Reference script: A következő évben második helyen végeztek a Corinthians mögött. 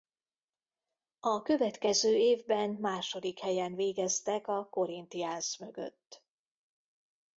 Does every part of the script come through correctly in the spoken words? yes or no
yes